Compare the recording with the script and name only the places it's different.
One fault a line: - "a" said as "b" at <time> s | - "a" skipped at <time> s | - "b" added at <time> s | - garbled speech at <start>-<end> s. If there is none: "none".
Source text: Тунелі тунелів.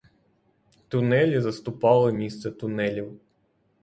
- "заступали місце" added at 1.4 s